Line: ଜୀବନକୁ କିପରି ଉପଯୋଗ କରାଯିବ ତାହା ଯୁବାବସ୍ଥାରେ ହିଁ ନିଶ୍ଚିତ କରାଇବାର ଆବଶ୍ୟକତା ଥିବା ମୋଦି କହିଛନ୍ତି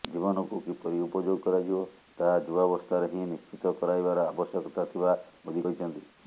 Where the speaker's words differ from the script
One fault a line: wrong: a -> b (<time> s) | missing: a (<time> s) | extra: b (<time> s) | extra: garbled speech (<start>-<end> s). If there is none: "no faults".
no faults